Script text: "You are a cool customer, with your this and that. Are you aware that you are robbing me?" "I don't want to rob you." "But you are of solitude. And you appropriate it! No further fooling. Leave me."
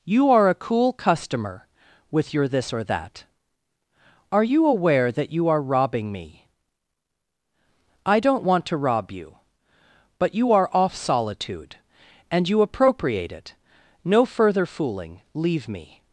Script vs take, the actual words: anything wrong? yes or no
yes